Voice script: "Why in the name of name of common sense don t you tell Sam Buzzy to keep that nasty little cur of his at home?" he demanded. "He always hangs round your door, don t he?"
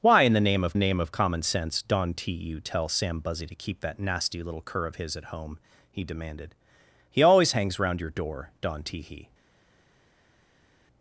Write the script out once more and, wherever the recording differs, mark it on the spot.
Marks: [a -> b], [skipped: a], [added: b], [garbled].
"Why in the name of name of common sense don t you tell Sam Buzzy to keep that nasty little cur of his at home?" he demanded. "He always hangs round your door, don t he?"